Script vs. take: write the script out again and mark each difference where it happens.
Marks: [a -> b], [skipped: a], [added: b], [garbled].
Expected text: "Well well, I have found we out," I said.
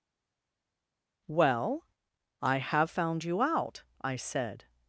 "Well [skipped: well,] I have found [we -> you] out," I said.